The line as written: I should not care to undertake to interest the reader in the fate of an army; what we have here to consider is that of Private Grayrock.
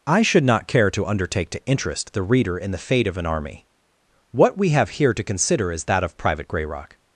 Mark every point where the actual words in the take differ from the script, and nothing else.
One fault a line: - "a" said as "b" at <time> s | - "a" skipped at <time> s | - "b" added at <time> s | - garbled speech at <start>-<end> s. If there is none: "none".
none